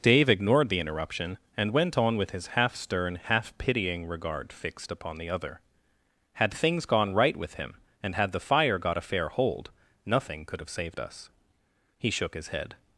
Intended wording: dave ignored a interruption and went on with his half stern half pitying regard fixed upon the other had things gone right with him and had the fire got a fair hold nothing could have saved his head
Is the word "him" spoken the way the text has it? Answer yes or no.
yes